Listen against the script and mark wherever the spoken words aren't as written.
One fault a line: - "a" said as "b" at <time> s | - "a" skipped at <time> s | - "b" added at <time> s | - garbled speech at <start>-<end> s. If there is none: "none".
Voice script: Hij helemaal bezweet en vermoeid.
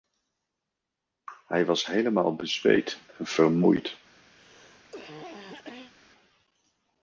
- "was" added at 1.6 s